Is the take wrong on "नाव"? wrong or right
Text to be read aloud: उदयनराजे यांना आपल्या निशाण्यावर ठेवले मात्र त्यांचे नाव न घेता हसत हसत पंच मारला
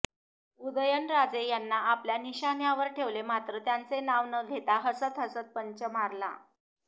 right